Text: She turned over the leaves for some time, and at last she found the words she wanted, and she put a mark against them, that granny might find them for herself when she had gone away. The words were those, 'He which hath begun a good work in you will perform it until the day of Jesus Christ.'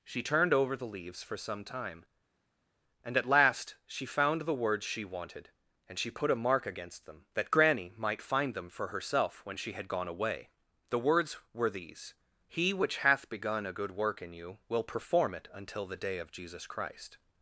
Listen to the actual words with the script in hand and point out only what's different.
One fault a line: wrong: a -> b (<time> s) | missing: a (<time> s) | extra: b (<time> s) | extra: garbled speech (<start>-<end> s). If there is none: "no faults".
wrong: those -> these (11.7 s)